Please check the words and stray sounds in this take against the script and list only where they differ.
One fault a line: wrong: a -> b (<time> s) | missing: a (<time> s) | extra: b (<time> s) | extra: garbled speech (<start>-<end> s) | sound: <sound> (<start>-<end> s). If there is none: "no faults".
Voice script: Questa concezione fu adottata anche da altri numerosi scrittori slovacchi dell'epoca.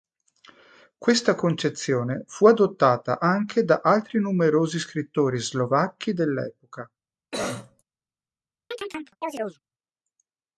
sound: cough (7.3-7.8 s)
sound: chirp (8.7-9.6 s)